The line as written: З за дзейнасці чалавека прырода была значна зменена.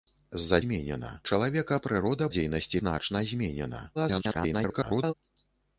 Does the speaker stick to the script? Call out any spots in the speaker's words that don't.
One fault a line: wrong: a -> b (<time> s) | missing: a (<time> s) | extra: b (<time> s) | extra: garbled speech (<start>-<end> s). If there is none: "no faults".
wrong: дзейнасці -> зменена (0.7 s)
wrong: была -> дзейнасці (2.3 s)
extra: garbled speech (3.9-5.1 s)